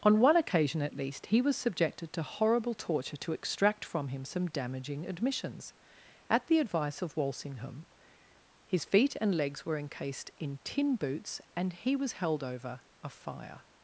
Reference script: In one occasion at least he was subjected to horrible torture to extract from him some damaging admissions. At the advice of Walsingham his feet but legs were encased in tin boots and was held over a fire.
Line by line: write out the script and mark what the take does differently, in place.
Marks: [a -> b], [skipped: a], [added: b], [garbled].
[In -> On] one occasion at least he was subjected to horrible torture to extract from him some damaging admissions. At the advice of Walsingham his feet [but -> and] legs were encased in tin boots and [added: he] was held over a fire.